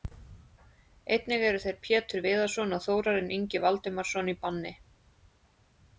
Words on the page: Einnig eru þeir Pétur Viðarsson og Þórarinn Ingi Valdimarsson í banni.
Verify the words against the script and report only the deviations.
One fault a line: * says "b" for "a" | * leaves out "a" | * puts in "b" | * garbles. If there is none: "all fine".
all fine